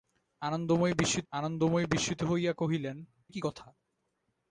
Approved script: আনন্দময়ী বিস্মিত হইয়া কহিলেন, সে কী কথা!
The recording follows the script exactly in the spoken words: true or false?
false